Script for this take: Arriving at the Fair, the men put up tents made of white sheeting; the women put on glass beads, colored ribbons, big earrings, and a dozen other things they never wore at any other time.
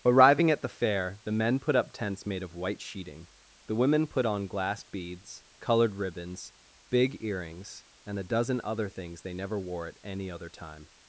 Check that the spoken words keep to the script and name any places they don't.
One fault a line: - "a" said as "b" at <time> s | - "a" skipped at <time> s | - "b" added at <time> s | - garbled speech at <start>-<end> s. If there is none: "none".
none